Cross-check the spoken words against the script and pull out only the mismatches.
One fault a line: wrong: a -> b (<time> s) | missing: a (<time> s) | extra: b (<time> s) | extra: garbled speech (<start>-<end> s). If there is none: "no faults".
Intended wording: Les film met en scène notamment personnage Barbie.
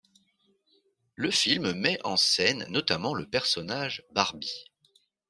wrong: Les -> Le (1.1 s)
extra: le (3.1 s)